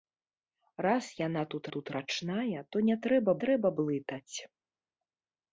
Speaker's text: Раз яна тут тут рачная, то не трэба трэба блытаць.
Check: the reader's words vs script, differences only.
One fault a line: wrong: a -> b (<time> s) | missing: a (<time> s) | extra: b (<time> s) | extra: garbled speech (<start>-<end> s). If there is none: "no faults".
no faults